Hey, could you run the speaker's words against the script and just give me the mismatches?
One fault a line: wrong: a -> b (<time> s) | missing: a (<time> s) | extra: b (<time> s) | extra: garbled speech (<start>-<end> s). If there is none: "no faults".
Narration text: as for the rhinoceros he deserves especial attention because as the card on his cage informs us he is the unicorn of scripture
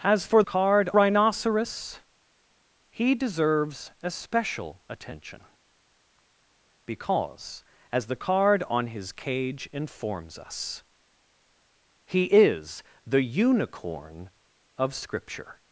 wrong: the -> card (0.4 s)